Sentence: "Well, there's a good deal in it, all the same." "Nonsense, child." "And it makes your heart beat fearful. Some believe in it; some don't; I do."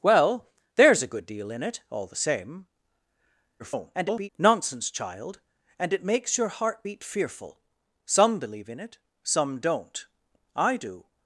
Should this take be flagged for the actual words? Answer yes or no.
yes